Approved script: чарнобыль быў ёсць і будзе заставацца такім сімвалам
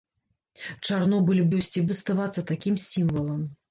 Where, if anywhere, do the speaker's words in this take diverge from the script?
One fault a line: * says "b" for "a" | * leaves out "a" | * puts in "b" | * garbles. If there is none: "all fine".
* leaves out "быў"
* leaves out "будзе"